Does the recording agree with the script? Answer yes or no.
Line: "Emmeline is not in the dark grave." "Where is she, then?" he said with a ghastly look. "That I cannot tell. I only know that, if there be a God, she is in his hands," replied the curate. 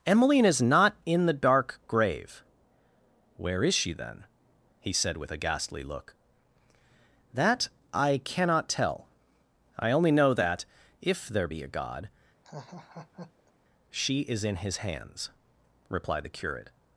yes